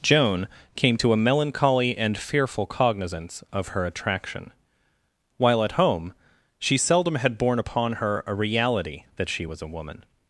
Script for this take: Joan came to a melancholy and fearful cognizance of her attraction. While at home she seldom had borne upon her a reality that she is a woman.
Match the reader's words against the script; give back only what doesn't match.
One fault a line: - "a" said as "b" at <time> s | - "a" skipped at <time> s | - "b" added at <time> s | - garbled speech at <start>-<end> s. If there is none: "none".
- "is" said as "was" at 9.4 s